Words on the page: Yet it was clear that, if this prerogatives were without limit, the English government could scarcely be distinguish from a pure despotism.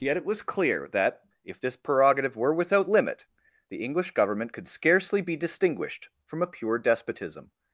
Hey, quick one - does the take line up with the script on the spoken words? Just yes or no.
no